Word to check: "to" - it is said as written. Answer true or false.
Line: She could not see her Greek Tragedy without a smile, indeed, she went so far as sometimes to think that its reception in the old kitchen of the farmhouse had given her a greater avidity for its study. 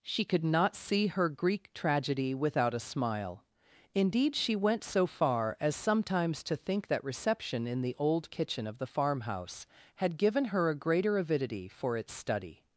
true